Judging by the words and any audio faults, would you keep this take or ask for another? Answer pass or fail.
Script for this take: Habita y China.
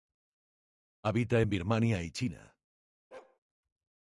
fail